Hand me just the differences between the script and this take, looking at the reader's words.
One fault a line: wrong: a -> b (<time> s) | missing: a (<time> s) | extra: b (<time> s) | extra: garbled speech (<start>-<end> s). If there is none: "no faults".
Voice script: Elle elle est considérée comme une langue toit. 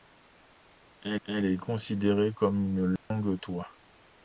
no faults